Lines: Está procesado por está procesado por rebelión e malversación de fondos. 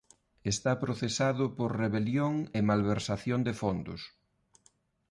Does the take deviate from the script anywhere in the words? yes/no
yes